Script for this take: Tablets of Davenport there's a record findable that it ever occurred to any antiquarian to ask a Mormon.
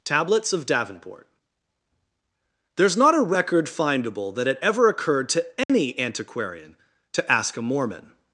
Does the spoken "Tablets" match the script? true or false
true